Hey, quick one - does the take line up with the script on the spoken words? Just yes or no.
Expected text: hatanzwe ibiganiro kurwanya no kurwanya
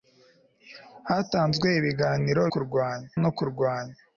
yes